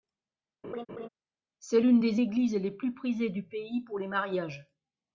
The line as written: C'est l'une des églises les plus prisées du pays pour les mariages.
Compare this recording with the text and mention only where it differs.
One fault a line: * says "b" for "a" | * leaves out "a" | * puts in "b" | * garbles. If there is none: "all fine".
all fine